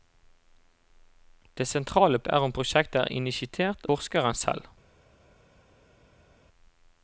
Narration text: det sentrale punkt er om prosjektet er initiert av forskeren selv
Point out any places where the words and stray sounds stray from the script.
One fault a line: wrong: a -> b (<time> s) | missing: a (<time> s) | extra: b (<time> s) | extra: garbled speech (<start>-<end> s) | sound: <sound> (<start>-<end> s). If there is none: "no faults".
missing: punkt (2.2 s)
missing: av (3.9 s)